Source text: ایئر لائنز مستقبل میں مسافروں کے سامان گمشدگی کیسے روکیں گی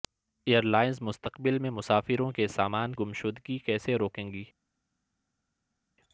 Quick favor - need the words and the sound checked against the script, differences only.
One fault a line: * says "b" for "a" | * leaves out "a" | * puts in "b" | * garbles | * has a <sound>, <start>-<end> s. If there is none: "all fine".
all fine